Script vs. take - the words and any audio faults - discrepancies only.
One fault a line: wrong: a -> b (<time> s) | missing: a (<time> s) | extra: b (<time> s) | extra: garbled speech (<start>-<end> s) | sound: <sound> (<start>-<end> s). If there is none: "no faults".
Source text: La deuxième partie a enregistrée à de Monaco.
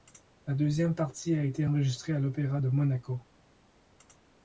extra: été (1.4 s)
extra: l'Opéra (2.2 s)